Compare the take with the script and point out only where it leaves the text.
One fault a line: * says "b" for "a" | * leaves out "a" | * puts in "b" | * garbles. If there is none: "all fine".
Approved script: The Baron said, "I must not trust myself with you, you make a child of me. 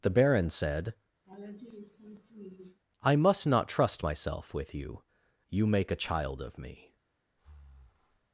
all fine